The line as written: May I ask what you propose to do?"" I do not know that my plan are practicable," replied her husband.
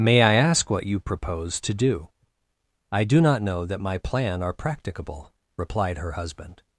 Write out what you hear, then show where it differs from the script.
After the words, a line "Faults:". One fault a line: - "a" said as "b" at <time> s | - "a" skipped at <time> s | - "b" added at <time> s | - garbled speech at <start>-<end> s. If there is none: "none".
May I ask what you propose to do?"" I do not know that my plan are practicable," replied her husband.
Faults:
none